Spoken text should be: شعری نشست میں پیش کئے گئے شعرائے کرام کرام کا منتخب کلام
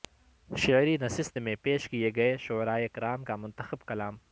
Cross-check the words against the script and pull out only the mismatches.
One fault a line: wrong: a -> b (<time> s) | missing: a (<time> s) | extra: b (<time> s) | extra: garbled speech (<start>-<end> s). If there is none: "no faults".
missing: کرام (3.2 s)